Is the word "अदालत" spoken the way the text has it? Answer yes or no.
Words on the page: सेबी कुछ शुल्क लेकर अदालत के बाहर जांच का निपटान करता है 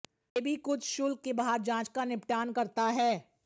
no